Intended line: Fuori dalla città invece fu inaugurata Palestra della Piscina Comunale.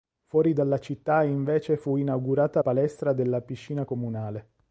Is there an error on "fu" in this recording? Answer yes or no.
no